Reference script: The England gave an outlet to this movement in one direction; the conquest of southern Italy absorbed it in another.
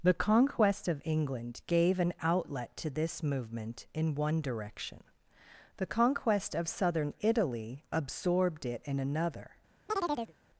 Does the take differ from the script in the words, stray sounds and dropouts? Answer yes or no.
yes